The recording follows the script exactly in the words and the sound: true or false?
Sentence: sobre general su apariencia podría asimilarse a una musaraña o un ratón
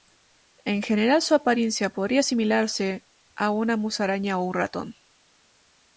false